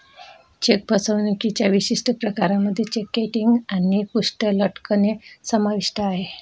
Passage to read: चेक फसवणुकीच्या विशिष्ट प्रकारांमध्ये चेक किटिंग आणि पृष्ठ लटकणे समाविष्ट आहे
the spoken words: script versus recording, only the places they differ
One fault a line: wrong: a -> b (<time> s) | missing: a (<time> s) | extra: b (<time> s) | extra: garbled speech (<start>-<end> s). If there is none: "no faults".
no faults